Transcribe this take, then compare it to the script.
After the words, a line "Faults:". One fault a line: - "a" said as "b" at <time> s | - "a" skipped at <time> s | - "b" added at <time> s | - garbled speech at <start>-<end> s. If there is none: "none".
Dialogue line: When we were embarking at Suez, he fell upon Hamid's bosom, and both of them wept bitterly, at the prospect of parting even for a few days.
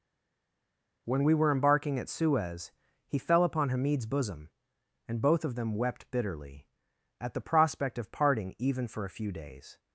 When we were embarking at Suez, he fell upon Hamid's bosom, and both of them wept bitterly, at the prospect of parting even for a few days.
Faults:
none